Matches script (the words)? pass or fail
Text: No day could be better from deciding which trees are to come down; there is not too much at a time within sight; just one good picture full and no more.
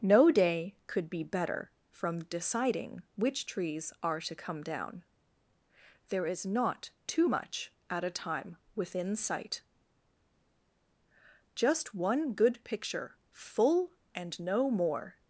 pass